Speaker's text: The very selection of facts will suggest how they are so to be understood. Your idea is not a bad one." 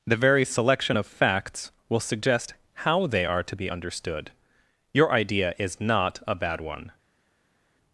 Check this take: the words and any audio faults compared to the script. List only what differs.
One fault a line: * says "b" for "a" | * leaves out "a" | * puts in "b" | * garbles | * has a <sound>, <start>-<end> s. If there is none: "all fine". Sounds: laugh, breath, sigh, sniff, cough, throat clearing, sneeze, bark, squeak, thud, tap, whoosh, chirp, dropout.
* leaves out "so"